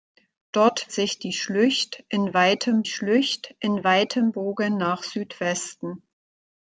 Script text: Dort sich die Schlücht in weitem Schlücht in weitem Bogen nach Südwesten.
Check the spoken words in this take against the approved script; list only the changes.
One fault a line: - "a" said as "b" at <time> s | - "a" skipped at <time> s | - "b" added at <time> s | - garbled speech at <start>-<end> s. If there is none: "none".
none